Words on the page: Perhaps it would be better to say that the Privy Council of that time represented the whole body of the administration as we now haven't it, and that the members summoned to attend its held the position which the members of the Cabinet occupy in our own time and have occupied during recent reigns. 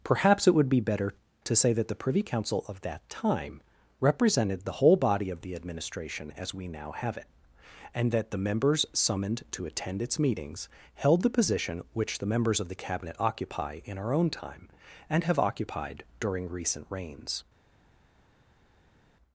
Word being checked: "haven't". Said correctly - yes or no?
no